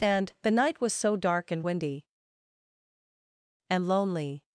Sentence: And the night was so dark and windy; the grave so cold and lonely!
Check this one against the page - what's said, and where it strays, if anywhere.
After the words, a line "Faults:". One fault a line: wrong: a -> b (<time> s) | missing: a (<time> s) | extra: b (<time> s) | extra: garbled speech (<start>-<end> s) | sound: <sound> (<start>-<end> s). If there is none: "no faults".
And the night was so dark and windy; and lonely!
Faults:
missing: the grave so cold (2.1 s)